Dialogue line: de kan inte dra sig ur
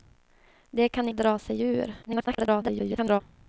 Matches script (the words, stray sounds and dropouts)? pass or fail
fail